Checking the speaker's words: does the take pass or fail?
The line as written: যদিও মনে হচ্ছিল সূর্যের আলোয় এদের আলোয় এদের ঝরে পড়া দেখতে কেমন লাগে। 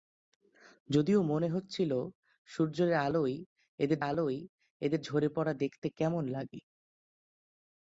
pass